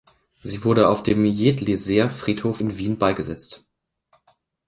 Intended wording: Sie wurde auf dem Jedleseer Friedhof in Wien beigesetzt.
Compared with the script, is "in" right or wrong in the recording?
right